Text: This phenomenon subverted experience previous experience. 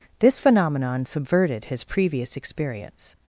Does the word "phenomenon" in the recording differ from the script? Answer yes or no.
no